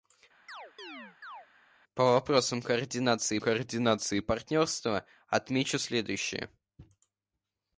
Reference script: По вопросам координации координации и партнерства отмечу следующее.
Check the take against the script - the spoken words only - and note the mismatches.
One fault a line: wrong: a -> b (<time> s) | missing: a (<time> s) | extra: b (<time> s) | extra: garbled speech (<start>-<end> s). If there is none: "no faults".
no faults